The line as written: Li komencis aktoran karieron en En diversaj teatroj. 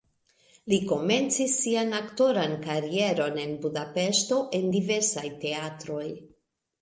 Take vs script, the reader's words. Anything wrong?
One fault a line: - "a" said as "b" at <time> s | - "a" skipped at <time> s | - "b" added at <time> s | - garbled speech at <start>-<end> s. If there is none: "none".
- "sian" added at 1.6 s
- "Budapeŝto" added at 3.6 s